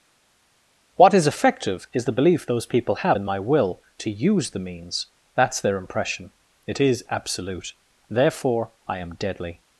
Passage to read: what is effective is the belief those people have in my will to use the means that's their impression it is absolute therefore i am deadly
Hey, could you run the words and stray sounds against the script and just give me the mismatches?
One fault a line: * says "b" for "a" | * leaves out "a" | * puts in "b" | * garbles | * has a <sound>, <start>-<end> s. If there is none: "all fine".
all fine